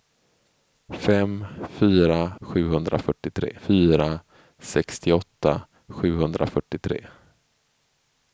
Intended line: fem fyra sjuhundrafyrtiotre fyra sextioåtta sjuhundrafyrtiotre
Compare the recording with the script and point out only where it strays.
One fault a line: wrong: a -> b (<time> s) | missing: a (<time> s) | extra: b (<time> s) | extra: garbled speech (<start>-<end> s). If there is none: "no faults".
no faults